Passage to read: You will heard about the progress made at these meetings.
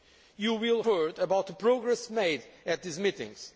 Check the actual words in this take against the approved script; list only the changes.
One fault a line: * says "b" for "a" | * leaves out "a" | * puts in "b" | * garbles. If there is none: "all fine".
all fine